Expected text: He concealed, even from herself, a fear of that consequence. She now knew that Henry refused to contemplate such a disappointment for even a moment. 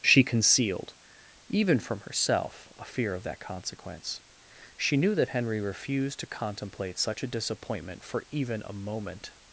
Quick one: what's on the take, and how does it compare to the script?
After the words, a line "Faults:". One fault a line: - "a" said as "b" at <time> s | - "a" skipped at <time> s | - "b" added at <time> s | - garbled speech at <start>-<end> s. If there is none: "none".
She concealed, even from herself, a fear of that consequence. She knew that Henry refused to contemplate such a disappointment for even a moment.
Faults:
- "He" said as "She" at 0.0 s
- "now" skipped at 5.0 s